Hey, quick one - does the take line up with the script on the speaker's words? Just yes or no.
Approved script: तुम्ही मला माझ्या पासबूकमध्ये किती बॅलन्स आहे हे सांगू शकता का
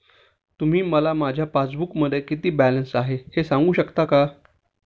yes